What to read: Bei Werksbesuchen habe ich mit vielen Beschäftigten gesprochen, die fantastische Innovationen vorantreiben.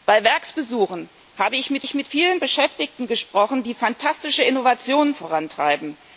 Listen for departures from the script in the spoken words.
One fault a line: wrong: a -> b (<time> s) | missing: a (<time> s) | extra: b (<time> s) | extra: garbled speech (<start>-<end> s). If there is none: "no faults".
extra: ich mit (1.8 s)